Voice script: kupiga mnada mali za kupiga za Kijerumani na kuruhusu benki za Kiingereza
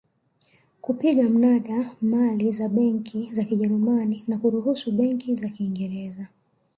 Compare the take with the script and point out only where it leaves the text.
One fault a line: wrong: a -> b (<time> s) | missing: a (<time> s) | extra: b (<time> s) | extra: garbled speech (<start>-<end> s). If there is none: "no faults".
wrong: kupiga -> benki (2.7 s)